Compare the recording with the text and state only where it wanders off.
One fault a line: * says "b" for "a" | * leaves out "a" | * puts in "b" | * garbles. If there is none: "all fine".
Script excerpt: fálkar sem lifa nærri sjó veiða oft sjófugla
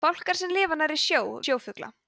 * leaves out "veiða oft"